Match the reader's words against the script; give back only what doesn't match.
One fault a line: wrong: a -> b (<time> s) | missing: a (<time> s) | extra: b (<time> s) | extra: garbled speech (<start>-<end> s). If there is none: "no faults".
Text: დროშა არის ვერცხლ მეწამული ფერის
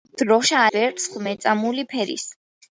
missing: არის (0.6 s)